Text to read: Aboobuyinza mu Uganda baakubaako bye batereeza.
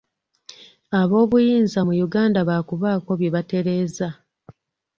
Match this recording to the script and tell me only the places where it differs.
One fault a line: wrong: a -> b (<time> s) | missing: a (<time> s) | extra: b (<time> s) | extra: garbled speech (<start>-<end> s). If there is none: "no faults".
no faults